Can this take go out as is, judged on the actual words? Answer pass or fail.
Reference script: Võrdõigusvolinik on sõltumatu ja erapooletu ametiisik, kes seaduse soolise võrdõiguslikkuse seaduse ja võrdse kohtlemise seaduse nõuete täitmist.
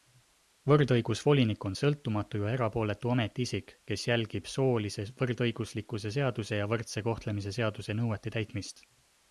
fail